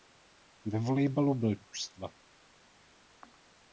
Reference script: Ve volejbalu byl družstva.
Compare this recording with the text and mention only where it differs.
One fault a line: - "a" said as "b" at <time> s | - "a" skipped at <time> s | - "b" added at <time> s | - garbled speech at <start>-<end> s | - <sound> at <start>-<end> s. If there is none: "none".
none